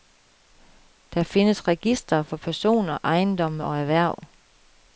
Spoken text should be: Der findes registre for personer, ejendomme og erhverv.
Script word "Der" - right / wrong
right